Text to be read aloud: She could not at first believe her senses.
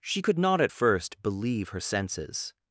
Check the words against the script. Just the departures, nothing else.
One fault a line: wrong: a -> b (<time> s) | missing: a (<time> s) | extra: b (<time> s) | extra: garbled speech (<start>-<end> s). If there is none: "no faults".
no faults